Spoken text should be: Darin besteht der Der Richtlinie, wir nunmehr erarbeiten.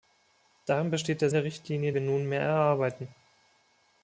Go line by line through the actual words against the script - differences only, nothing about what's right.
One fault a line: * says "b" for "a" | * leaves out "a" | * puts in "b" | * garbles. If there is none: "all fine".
all fine